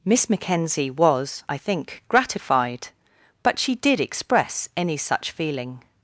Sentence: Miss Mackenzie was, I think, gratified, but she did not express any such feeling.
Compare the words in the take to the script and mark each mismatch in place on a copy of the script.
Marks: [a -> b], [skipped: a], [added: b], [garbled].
Miss Mackenzie was, I think, gratified, but she did [skipped: not] express any such feeling.